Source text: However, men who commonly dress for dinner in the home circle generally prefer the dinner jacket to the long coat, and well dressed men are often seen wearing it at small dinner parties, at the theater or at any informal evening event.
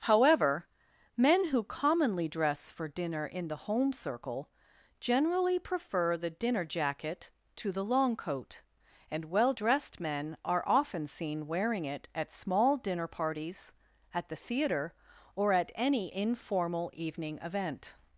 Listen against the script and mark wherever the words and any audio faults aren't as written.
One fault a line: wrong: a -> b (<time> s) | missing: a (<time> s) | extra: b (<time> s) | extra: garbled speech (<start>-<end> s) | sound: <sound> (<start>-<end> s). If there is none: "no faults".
no faults